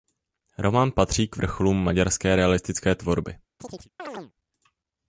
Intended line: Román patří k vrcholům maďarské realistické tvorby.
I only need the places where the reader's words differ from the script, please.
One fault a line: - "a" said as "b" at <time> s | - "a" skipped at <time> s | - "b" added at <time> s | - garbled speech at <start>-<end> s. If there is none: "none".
none